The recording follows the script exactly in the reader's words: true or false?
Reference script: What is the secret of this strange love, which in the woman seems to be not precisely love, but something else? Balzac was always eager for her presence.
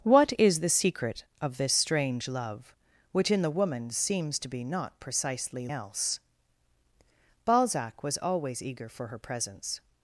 false